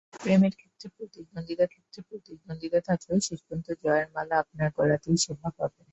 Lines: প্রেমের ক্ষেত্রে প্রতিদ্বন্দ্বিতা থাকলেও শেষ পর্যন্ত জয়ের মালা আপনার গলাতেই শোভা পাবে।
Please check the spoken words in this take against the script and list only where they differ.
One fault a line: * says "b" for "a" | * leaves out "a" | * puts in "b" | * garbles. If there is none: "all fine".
* puts in "ক্ষেত্রে প্রতিদ্বন্দ্বিতা"